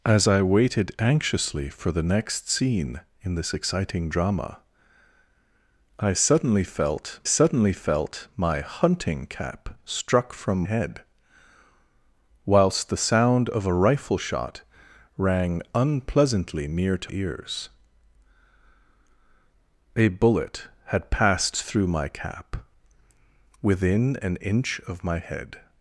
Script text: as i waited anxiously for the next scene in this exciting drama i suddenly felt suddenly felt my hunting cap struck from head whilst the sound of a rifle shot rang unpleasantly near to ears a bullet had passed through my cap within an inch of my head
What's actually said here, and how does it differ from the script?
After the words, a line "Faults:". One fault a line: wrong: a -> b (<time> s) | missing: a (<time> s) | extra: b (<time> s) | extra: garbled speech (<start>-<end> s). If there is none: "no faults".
as i waited anxiously for the next scene in this exciting drama i suddenly felt suddenly felt my hunting cap struck from head whilst the sound of a rifle shot rang unpleasantly near to ears a bullet had passed through my cap within an inch of my head
Faults:
no faults